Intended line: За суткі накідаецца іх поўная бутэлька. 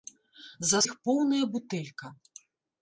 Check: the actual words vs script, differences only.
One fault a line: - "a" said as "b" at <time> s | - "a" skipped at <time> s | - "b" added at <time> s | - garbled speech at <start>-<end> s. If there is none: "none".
- "суткі накідаецца" skipped at 0.8 s